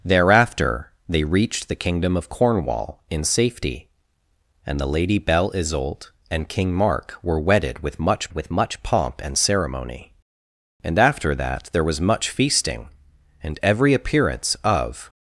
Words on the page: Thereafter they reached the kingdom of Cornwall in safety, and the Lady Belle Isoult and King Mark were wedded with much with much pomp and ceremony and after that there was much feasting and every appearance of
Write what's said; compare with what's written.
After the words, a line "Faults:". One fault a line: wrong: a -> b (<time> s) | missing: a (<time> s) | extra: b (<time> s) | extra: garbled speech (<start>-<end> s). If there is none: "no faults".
Thereafter they reached the kingdom of Cornwall in safety, and the Lady Belle Isoult and King Mark were wedded with much with much pomp and ceremony and after that there was much feasting and every appearance of
Faults:
no faults